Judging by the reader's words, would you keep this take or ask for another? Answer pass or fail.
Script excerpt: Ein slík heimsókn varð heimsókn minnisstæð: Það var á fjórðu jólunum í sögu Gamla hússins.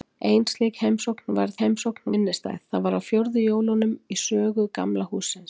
pass